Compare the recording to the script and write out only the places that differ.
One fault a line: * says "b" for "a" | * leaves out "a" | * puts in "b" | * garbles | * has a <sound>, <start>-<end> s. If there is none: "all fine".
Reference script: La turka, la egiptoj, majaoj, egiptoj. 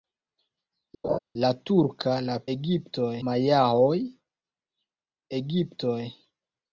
* has a laugh, 1.0-1.2 s